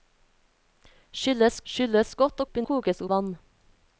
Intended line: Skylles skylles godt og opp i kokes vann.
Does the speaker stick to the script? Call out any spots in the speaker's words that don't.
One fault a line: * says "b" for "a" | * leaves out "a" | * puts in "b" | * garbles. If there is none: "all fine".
all fine